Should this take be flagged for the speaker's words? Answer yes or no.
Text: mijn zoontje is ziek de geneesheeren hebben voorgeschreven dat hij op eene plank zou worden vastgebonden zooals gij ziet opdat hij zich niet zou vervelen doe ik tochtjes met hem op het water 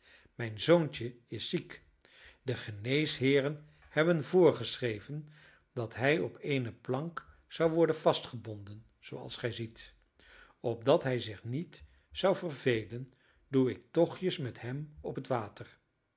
no